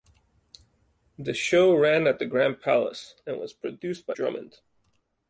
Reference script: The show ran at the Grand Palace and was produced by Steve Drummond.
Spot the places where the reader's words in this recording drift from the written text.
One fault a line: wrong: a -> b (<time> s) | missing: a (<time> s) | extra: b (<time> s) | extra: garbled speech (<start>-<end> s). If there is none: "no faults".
missing: Steve (4.2 s)